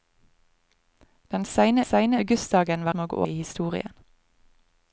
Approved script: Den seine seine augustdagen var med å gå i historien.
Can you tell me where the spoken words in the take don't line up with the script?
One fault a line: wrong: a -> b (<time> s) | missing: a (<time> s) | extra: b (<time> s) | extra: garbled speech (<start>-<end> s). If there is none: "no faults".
no faults